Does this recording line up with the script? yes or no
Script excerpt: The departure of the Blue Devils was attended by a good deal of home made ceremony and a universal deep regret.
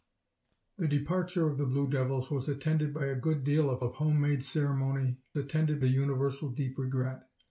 no